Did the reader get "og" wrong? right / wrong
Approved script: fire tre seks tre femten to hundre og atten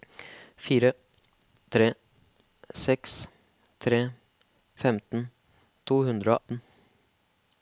wrong